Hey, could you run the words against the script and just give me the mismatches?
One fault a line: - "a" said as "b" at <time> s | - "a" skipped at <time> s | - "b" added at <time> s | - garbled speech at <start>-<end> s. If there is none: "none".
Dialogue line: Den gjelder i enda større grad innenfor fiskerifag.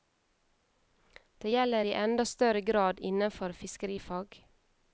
- "Den" said as "Det" at 1.4 s